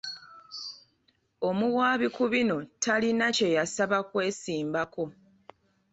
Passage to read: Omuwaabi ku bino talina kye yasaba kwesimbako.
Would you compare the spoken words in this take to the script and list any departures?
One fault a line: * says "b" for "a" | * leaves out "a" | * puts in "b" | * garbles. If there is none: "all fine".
all fine